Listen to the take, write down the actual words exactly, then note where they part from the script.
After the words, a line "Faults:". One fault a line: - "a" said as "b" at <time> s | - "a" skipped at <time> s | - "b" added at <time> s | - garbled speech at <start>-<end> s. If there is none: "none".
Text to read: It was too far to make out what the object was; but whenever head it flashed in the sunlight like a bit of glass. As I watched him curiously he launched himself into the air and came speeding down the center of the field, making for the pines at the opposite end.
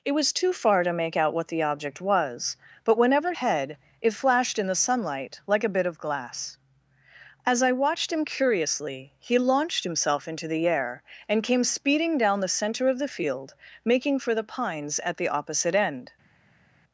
It was too far to make out what the object was; but whenever head it flashed in the sunlight like a bit of glass. As I watched him curiously he launched himself into the air and came speeding down the center of the field, making for the pines at the opposite end.
Faults:
none